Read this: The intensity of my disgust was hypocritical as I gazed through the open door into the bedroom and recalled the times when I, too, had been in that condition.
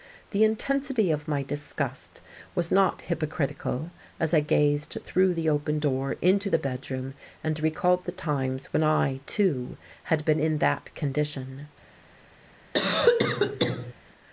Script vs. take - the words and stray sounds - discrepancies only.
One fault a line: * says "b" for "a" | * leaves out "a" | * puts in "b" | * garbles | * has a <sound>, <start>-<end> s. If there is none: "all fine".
* puts in "not"
* has a cough, 12.7-13.9 s